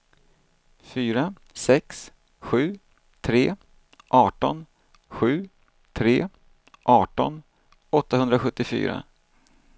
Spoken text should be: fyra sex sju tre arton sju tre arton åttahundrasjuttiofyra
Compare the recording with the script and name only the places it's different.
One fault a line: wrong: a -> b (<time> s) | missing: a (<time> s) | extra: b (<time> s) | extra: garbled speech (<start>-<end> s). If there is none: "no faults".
no faults